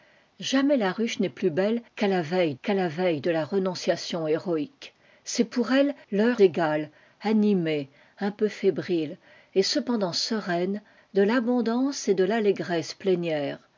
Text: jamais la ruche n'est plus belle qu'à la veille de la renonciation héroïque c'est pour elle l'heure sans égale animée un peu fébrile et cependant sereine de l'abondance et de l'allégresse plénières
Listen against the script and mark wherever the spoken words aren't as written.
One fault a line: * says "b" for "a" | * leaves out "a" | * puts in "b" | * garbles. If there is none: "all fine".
* puts in "qu'à la veille"
* leaves out "sans"